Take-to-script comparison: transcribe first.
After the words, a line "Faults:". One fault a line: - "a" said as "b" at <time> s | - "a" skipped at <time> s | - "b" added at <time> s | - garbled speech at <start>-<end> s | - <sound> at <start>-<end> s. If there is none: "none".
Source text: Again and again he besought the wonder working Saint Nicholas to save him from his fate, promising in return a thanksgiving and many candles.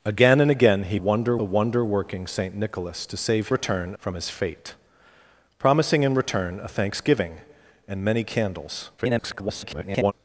Again and again he wonder the wonder working Saint Nicholas to save return from his fate, promising in return a thanksgiving and many candles. [garbled]
Faults:
- "besought" said as "wonder" at 1.0 s
- "him" said as "return" at 3.5 s
- garbled speech at 9.0-10.1 s